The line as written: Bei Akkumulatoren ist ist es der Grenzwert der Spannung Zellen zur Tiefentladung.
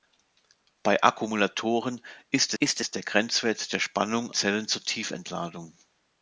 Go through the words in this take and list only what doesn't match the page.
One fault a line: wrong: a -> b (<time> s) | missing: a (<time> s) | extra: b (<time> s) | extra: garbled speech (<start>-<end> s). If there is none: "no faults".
no faults